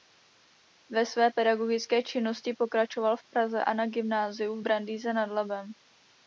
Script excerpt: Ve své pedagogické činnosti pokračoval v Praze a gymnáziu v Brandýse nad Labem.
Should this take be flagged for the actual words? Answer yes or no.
yes